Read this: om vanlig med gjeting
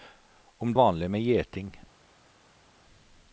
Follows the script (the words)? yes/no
yes